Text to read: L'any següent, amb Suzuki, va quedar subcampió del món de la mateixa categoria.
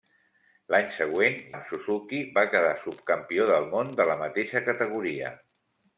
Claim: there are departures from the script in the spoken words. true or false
false